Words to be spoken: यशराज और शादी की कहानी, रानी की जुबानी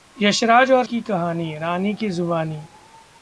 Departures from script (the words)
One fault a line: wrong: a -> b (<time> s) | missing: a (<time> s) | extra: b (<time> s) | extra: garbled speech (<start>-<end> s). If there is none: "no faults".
missing: शादी (0.8 s)